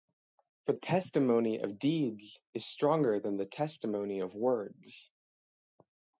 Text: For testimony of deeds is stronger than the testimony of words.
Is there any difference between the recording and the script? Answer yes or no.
no